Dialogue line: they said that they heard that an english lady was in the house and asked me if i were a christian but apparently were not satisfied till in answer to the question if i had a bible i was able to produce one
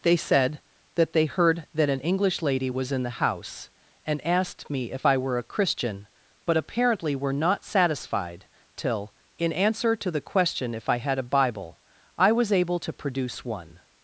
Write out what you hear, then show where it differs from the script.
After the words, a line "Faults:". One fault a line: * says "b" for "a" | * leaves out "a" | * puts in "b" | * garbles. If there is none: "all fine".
they said that they heard that an english lady was in the house and asked me if i were a christian but apparently were not satisfied till in answer to the question if i had a bible i was able to produce one
Faults:
all fine